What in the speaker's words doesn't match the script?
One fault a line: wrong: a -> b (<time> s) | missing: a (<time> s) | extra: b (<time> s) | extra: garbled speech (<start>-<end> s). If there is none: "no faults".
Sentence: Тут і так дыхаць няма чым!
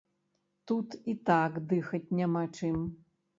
no faults